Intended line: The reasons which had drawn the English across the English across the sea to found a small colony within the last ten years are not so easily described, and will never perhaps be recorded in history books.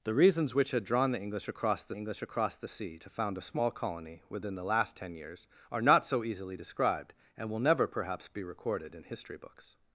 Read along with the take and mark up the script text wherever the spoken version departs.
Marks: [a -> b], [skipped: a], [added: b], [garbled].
The reasons which had drawn the English across the English across the sea to found a small colony within the last ten years are not so easily described, and will never perhaps be recorded in history books.